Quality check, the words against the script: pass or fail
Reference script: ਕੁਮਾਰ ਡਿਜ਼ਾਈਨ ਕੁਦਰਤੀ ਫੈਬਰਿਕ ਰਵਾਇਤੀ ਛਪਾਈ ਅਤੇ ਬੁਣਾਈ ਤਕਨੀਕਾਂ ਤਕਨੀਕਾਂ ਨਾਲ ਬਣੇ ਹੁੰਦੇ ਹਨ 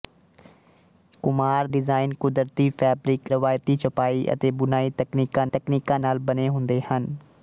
pass